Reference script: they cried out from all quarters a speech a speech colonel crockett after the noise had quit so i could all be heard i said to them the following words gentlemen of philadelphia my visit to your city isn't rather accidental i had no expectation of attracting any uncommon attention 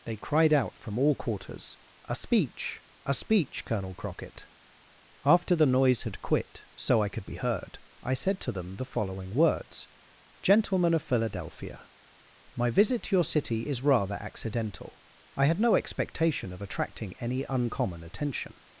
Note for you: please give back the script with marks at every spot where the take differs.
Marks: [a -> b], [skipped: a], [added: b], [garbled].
they cried out from all quarters a speech a speech colonel crockett after the noise had quit so i could [skipped: all] be heard i said to them the following words gentlemen of philadelphia my visit to your city [isn't -> is] rather accidental i had no expectation of attracting any uncommon attention